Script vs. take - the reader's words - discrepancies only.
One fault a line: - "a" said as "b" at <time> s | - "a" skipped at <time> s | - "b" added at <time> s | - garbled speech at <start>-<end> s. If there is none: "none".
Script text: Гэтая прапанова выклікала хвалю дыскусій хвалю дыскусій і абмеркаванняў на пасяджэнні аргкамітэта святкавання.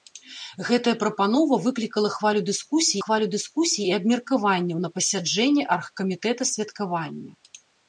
none